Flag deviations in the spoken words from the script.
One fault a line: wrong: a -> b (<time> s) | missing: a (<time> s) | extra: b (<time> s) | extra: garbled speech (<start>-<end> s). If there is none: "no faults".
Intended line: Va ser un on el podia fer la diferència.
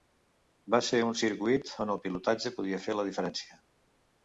extra: circuit (1.2 s)
extra: pilotatge (2.1 s)